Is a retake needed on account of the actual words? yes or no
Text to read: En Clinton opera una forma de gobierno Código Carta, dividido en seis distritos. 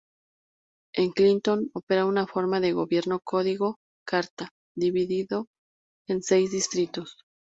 no